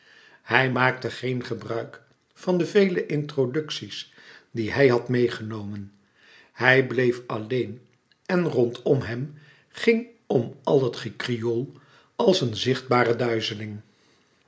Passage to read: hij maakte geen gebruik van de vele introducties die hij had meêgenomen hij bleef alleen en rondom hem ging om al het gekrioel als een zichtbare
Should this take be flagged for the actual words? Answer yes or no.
no